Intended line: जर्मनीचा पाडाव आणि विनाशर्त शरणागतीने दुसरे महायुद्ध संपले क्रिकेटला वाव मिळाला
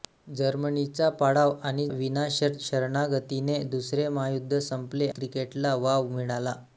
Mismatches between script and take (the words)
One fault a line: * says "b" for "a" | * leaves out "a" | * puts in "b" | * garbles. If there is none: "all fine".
all fine